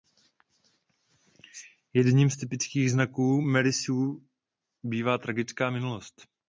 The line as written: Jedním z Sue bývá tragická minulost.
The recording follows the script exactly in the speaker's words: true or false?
false